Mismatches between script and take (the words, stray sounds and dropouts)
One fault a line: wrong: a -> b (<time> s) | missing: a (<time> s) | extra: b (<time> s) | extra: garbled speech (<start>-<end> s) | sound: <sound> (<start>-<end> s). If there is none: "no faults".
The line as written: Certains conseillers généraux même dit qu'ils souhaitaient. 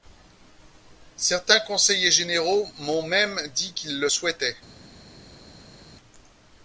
extra: m'ont (2.8 s)
extra: le (4.0 s)